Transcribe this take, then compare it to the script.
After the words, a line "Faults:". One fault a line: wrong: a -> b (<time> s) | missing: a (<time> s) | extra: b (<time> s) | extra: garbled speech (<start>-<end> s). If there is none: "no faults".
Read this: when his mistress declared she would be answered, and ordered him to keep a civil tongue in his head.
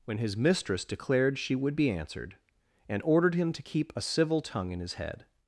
when his mistress declared she would be answered, and ordered him to keep a civil tongue in his head.
Faults:
no faults